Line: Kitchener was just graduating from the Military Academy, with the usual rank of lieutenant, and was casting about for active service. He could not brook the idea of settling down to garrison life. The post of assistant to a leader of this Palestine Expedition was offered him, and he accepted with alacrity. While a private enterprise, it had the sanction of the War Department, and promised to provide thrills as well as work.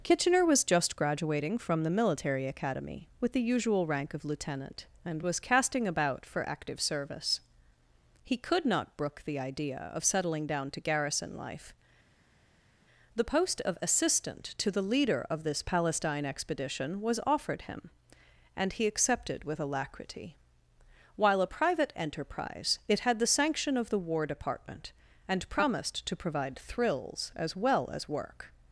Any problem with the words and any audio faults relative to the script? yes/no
yes